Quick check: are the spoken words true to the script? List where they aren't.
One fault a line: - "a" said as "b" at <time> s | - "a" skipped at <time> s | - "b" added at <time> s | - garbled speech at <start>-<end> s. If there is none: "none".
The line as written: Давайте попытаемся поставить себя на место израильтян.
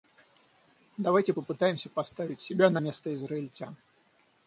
none